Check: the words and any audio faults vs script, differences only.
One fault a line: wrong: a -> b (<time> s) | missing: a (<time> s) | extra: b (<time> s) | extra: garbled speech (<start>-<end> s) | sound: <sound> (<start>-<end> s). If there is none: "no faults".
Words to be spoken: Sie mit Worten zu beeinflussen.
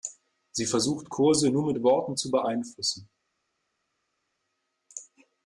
extra: versucht Kurse nur (0.7 s)